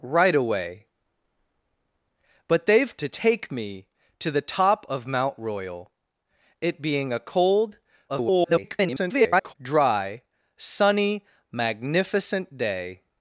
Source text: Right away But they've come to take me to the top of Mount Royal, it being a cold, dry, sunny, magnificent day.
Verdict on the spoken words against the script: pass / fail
fail